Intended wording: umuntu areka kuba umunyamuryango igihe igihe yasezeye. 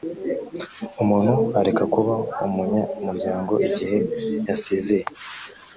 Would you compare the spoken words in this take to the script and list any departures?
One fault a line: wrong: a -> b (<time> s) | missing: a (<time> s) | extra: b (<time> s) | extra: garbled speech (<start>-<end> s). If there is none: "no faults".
missing: igihe (4.0 s)